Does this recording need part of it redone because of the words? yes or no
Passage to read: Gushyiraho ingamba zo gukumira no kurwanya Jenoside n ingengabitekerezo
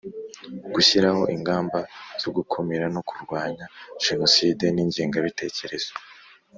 no